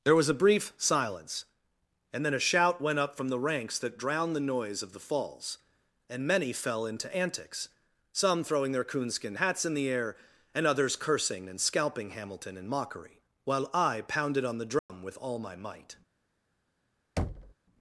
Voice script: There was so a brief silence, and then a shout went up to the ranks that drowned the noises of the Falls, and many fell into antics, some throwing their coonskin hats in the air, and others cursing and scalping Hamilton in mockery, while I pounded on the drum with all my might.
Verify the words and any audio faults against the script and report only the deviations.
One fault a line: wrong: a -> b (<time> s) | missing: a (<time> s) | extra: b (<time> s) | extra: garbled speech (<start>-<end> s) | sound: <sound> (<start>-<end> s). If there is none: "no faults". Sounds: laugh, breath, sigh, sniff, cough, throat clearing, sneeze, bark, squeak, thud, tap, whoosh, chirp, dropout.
missing: so (0.3 s)
wrong: to -> from (3.1 s)
wrong: noises -> noise (4.5 s)
sound: dropout (14.8-14.9 s)
sound: thud (17.2-17.5 s)